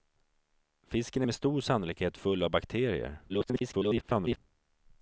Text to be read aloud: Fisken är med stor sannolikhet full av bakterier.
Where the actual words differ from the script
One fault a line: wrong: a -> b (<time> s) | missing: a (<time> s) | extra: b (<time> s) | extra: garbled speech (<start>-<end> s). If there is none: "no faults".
extra: garbled speech (3.3-4.4 s)